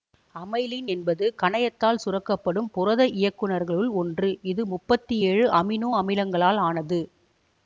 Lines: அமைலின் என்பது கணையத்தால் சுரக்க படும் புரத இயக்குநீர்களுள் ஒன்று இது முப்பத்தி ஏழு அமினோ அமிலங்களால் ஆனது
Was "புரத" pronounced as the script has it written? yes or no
yes